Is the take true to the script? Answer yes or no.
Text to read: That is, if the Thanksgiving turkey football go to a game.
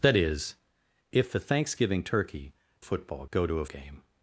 yes